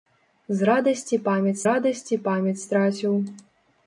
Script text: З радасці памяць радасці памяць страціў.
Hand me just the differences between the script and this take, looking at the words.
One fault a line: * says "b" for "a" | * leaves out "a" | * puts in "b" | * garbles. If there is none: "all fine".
all fine